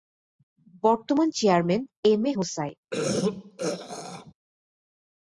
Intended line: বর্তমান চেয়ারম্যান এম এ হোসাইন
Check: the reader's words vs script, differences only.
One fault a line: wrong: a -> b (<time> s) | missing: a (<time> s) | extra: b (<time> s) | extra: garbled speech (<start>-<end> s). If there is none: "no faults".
no faults